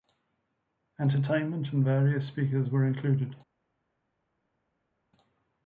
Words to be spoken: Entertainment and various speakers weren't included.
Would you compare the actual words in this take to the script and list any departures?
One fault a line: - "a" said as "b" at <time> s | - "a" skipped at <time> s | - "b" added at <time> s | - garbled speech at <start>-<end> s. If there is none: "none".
- "weren't" said as "were" at 2.7 s